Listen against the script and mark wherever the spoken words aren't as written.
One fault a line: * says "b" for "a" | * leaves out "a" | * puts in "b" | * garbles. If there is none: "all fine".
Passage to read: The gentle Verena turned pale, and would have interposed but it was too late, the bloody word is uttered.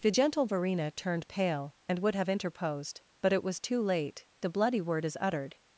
all fine